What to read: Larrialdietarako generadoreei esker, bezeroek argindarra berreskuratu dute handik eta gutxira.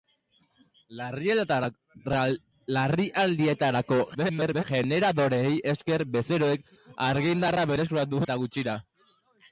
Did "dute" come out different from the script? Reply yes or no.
yes